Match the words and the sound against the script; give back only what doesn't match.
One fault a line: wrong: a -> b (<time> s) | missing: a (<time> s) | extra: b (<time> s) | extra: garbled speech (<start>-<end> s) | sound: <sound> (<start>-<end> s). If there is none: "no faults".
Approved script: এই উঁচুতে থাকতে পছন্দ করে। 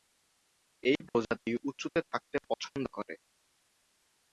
extra: প্রজাতি (1.1 s)